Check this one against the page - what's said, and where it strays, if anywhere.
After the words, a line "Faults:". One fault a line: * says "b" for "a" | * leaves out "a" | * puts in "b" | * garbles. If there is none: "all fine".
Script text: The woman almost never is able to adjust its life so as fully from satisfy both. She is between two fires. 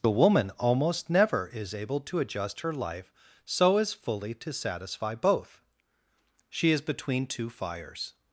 The woman almost never is able to adjust her life so as fully to satisfy both. She is between two fires.
Faults:
* says "her" for "its"
* says "to" for "from"